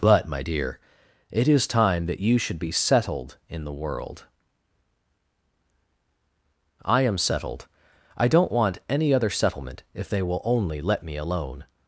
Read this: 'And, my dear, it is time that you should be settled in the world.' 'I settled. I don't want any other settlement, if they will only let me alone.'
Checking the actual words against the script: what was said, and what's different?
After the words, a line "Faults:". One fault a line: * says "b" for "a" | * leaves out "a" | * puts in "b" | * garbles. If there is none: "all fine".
'But, my dear, it is time that you should be settled in the world.' 'I am settled. I don't want any other settlement, if they will only let me alone.'
Faults:
* says "But" for "And"
* puts in "am"